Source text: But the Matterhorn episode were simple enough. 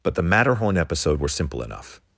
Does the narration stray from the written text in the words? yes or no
no